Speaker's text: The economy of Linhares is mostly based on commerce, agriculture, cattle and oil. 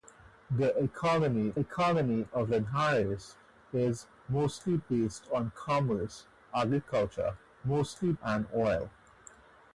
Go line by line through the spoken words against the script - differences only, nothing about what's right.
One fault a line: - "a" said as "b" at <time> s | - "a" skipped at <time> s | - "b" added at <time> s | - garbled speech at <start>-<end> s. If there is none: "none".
- "economy" added at 1.6 s
- "cattle" said as "mostly" at 7.6 s